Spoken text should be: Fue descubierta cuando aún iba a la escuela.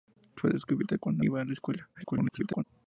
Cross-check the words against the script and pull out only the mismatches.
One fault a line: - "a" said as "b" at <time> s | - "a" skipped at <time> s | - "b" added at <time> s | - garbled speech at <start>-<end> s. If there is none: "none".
- "aún" skipped at 1.2 s
- garbled speech at 1.9-2.6 s